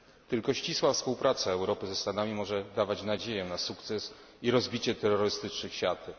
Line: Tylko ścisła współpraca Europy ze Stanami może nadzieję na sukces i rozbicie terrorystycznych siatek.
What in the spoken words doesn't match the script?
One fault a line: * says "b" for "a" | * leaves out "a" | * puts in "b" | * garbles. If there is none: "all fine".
* puts in "dawać"